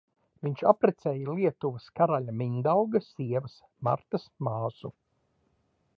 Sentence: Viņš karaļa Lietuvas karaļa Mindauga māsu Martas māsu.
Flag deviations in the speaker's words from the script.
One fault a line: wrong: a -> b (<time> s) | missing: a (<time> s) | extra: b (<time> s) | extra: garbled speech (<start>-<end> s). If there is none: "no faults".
wrong: karaļa -> apprecēja (0.7 s)
wrong: māsu -> sievas (3.1 s)